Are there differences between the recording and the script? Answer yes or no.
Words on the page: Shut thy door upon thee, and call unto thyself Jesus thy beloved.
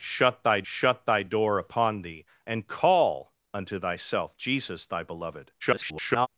yes